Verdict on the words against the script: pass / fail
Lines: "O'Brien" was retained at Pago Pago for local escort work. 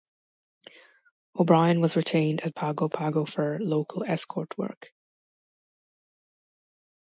pass